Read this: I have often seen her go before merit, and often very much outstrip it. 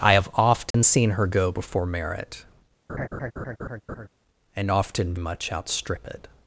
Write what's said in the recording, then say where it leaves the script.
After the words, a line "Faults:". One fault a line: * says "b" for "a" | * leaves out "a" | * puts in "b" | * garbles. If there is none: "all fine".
I have often seen her go before merit, and often much outstrip it.
Faults:
* leaves out "very"